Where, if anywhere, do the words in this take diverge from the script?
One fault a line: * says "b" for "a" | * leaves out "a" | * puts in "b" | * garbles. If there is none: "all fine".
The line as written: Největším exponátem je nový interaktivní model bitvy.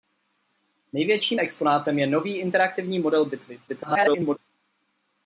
* garbles